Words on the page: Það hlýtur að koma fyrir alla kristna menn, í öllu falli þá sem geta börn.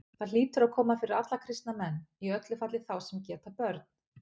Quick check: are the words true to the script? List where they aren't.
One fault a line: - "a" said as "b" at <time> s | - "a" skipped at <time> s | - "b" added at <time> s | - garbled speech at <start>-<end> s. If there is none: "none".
none